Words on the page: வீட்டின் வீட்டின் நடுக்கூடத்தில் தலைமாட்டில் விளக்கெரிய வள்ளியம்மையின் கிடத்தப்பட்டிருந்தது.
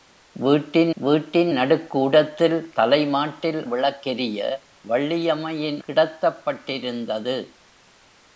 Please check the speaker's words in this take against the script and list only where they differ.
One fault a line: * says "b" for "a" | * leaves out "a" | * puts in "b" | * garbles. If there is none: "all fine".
all fine